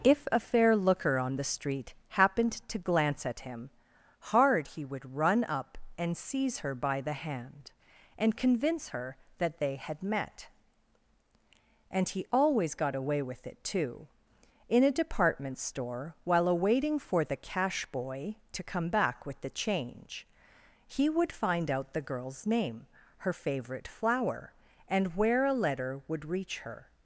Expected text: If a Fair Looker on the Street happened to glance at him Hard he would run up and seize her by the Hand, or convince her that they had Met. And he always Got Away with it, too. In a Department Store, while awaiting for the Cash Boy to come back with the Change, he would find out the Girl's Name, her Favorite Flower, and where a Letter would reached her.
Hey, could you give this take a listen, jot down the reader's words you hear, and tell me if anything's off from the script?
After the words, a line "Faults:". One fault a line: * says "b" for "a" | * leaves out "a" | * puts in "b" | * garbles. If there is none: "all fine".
If a Fair Looker on the Street happened to glance at him Hard he would run up and seize her by the Hand, and convince her that they had Met. And he always Got Away with it, too. In a Department Store, while awaiting for the Cash Boy to come back with the Change, he would find out the Girl's Name, her Favorite Flower, and where a Letter would reach her.
Faults:
* says "and" for "or"
* says "reach" for "reached"